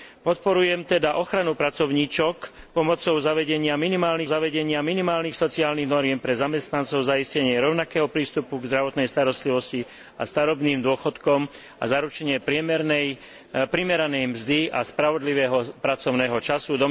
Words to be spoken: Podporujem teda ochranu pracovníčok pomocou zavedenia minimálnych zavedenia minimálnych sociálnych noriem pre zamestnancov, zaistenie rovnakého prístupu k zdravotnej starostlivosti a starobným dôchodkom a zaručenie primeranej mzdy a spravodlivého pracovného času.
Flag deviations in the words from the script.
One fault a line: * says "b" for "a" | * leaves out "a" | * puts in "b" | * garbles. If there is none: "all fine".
all fine